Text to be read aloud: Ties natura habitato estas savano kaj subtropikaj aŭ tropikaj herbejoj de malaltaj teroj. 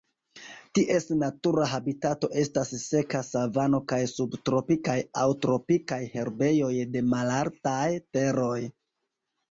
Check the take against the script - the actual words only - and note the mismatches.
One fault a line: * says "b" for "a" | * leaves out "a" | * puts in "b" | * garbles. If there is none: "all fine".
* puts in "seka"